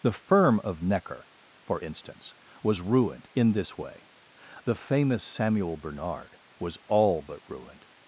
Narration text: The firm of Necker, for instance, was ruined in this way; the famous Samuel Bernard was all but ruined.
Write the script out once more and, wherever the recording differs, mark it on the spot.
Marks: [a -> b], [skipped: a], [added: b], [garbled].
The firm of Necker, for instance, was ruined in this way; the famous Samuel Bernard was all but ruined.